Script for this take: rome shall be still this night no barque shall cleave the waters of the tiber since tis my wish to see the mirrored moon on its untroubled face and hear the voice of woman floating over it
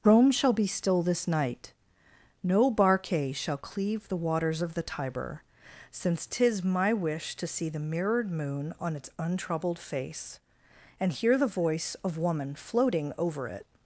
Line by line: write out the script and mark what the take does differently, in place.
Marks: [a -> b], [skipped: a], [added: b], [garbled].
rome shall be still this night no barque shall cleave the waters of the tiber since tis my wish to see the mirrored moon on its untroubled face and hear the voice of woman floating over it